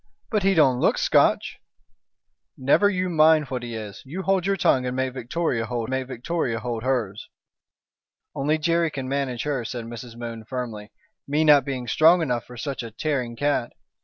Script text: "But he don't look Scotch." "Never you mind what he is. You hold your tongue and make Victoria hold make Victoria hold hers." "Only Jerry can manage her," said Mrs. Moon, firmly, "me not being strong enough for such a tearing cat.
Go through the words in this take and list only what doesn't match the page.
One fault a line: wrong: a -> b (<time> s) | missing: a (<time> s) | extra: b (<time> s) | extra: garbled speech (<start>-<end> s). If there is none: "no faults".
no faults